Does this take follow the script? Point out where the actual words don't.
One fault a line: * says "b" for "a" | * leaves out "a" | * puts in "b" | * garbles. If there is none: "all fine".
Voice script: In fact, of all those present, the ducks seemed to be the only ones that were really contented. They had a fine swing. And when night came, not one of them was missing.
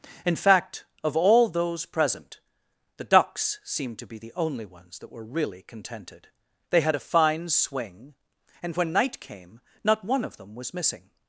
all fine